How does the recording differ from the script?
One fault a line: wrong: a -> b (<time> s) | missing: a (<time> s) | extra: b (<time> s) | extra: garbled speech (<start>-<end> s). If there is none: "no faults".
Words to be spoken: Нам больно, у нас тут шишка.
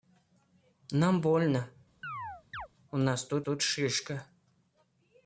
extra: тут (3.4 s)